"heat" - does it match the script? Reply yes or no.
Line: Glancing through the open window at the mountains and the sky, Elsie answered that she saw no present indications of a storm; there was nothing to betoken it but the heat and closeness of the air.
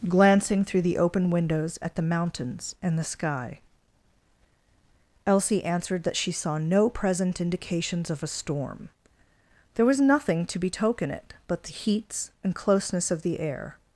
no